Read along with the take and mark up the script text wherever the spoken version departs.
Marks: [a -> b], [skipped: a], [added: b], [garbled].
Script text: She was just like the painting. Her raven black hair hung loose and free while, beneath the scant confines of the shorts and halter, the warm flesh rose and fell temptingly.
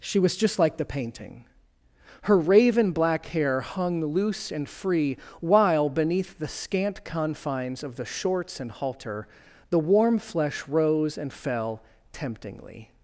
She was just like the painting. Her raven black hair hung loose and free while, beneath the scant confines of the shorts and halter, the warm flesh rose and fell temptingly.